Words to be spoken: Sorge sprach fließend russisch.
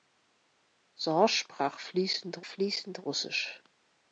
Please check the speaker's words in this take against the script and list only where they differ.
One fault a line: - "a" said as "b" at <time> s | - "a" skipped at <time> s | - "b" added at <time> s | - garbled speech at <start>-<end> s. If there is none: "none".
- "fließend" added at 2.4 s